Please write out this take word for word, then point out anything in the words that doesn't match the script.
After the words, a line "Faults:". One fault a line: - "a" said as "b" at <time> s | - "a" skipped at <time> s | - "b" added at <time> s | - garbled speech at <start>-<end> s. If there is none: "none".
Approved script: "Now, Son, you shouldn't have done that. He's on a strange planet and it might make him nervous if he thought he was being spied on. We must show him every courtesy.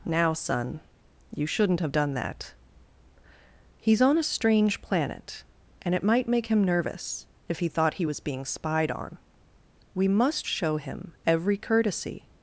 "Now, Son, you shouldn't have done that. He's on a strange planet and it might make him nervous if he thought he was being spied on. We must show him every courtesy.
Faults:
none